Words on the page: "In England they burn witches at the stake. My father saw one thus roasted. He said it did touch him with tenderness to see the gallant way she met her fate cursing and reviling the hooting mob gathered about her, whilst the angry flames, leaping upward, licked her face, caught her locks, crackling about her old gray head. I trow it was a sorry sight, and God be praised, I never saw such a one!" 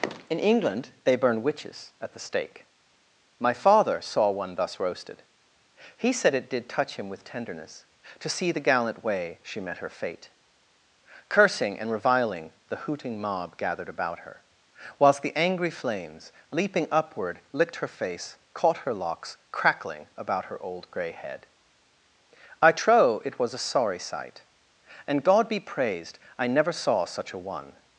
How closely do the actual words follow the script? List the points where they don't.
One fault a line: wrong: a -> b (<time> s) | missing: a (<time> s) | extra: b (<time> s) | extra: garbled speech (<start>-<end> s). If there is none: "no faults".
no faults